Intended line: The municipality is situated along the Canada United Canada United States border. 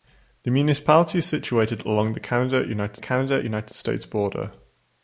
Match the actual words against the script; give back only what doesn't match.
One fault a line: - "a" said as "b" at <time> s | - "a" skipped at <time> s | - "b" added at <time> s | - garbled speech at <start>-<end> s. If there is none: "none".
none